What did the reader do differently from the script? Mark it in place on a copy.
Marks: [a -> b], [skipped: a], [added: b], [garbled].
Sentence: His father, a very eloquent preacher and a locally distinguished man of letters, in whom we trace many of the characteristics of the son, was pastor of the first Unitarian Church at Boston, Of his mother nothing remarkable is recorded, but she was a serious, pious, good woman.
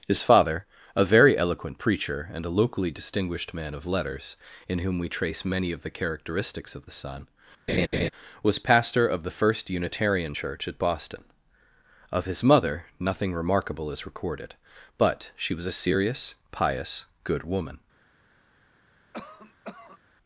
His father, a very eloquent preacher and a locally distinguished man of letters, in whom we trace many of the characteristics of the son, was pastor of the first Unitarian Church at Boston, Of his mother nothing remarkable is recorded, but she was a serious, pious, good woman.